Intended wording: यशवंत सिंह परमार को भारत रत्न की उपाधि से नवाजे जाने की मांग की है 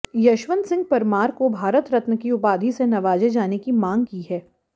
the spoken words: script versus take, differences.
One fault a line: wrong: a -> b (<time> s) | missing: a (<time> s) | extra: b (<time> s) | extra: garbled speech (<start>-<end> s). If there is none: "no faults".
no faults